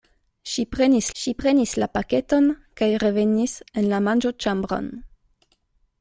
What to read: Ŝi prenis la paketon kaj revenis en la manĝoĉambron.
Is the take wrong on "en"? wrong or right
right